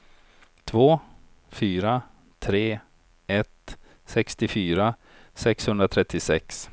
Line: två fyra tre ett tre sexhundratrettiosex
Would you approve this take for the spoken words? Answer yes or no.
no